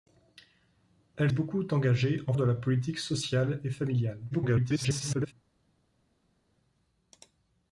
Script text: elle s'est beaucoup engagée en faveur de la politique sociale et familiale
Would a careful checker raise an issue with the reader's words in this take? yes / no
yes